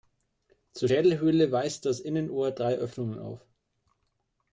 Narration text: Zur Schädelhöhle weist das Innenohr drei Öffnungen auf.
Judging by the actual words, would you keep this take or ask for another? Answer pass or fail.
pass